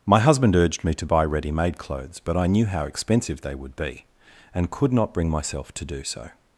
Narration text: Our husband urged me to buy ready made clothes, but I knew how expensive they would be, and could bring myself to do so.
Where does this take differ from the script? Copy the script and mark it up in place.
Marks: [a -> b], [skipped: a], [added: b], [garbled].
[Our -> My] husband urged me to buy ready made clothes, but I knew how expensive they would be, and could [added: not] bring myself to do so.